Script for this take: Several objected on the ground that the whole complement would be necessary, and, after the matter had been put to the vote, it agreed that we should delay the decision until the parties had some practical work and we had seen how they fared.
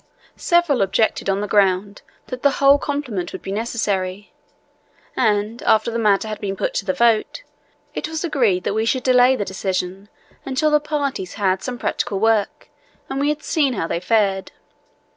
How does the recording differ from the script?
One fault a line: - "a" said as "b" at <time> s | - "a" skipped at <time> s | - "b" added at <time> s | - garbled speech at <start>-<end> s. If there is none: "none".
- "was" added at 8.1 s